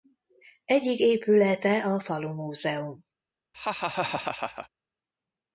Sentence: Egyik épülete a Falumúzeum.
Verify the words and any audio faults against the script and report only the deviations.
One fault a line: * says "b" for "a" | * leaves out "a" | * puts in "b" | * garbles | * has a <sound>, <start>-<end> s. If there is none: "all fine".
* has a laugh, 3.5-4.7 s